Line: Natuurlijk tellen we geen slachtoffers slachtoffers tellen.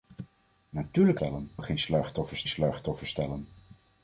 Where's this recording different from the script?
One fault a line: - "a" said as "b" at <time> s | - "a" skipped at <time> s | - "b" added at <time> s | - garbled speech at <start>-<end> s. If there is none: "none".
none